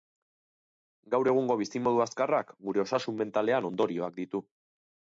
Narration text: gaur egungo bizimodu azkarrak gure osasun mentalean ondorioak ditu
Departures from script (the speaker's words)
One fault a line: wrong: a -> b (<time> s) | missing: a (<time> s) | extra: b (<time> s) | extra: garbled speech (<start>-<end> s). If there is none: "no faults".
no faults